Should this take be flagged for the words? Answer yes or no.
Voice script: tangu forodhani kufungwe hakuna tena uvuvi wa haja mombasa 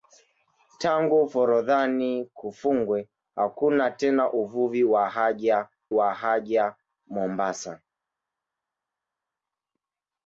yes